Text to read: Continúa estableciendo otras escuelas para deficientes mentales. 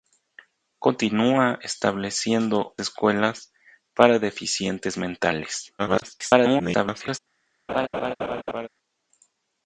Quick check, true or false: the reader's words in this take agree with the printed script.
false